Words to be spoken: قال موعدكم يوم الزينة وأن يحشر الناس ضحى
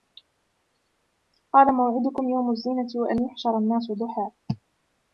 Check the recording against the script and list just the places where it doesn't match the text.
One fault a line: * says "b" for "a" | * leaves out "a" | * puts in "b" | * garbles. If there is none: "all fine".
all fine